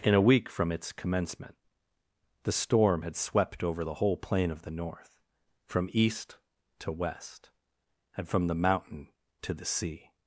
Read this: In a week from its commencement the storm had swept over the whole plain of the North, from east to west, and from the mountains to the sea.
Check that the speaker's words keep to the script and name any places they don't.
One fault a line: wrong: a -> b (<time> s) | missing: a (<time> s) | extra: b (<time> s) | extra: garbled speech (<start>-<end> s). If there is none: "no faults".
wrong: mountains -> mountain (8.5 s)